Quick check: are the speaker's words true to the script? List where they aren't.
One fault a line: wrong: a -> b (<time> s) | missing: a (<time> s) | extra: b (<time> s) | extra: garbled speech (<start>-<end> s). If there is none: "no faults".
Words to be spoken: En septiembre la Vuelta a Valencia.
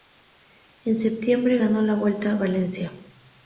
extra: ganó (1.6 s)